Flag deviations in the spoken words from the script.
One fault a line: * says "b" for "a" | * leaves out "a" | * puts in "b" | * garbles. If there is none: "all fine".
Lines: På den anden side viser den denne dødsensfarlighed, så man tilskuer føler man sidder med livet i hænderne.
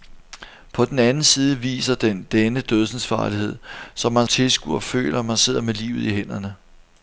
all fine